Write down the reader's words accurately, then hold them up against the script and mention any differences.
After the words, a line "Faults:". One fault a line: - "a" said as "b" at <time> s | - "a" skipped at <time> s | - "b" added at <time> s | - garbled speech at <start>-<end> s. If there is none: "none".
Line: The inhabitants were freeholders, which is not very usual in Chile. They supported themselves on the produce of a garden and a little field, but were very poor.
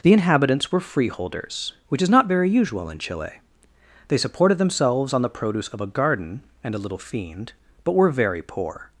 The inhabitants were freeholders, which is not very usual in Chile. They supported themselves on the produce of a garden and a little fiend, but were very poor.
Faults:
- "field" said as "fiend" at 7.0 s